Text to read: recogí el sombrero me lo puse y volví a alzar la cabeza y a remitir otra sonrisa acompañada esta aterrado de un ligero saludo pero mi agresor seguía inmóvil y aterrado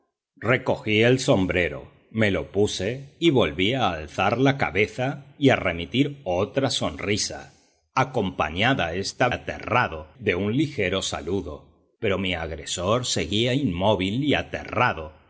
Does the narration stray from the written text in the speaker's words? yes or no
no